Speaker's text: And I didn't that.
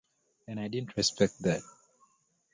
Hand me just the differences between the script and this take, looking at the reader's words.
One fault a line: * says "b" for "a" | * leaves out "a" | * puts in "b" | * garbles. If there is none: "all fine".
* puts in "respect"